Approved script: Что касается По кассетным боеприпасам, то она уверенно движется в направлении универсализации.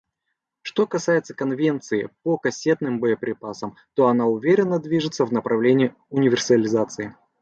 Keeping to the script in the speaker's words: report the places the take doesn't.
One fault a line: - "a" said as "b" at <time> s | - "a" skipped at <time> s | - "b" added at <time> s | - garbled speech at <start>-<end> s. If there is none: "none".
- "Конвенции" added at 1.4 s